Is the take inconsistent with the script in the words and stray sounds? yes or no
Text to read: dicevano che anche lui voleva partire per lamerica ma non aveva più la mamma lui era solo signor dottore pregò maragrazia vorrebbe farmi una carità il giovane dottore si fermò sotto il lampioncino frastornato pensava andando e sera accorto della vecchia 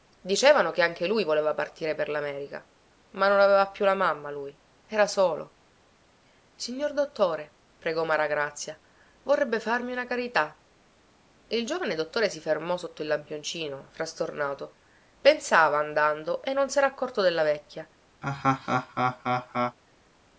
yes